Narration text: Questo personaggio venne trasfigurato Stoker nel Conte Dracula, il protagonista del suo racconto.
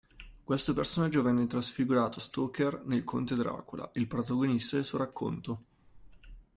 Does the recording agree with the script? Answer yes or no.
yes